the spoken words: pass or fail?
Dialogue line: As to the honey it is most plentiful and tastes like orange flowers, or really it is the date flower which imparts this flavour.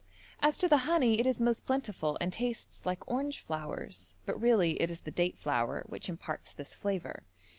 fail